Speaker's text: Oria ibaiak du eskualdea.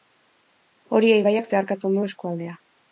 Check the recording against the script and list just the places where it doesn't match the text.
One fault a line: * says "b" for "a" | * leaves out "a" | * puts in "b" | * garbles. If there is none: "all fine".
* puts in "zeharkatzen"